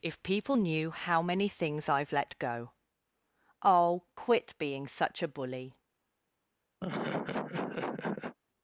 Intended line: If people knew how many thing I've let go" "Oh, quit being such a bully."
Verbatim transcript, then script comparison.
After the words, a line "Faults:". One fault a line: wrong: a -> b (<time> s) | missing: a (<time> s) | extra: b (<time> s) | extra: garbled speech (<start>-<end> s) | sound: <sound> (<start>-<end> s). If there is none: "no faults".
If people knew how many things I've let go" "Oh, quit being such a bully."
Faults:
wrong: thing -> things (1.5 s)
sound: laugh (6.8-8.4 s)